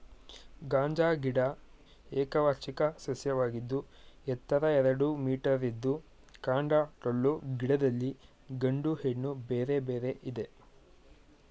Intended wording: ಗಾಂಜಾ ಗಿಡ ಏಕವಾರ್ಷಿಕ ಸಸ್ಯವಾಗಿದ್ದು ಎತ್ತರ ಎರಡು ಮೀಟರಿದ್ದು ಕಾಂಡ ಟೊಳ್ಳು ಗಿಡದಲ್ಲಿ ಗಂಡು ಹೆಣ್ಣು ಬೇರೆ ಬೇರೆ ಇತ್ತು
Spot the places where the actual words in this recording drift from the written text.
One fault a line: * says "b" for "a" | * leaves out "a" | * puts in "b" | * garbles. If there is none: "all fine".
* says "ಇದೆ" for "ಇತ್ತು"